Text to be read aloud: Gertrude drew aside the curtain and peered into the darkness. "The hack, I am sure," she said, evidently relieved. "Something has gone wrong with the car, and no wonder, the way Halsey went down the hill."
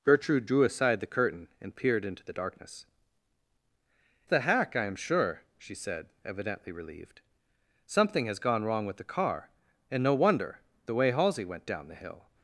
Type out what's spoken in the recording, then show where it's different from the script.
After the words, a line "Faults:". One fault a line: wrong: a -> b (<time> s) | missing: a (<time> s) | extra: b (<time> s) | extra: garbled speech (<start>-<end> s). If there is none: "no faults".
Gertrude drew aside the curtain and peered into the darkness. "The hack, I am sure," she said, evidently relieved. "Something has gone wrong with the car, and no wonder, the way Halsey went down the hill."
Faults:
no faults